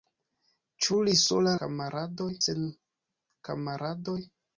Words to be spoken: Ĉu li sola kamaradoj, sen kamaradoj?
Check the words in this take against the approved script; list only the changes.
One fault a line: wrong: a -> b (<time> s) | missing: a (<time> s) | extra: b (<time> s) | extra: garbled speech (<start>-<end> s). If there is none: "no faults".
no faults